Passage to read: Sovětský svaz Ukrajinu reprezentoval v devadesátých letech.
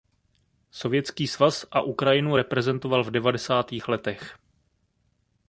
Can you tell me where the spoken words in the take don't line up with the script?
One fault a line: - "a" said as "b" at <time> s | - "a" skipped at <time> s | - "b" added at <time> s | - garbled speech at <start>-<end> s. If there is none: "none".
- "a" added at 1.7 s